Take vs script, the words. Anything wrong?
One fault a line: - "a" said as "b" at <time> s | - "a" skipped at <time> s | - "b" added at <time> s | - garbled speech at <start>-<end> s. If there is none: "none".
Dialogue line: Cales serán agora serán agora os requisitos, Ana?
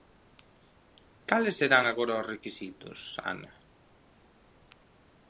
- "serán agora" skipped at 2.2 s